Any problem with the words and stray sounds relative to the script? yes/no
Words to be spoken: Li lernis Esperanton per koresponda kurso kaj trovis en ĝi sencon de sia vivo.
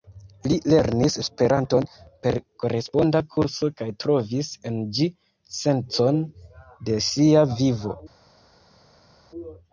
no